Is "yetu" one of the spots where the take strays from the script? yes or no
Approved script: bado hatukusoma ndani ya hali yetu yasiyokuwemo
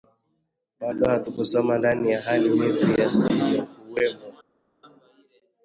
no